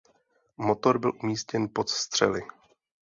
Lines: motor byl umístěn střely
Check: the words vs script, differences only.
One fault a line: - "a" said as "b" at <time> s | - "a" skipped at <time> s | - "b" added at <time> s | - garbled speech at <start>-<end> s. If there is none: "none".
- "pod" added at 1.7 s